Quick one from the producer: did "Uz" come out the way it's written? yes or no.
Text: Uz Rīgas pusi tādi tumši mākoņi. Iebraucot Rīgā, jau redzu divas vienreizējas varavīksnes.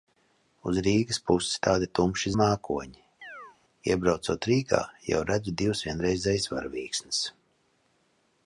yes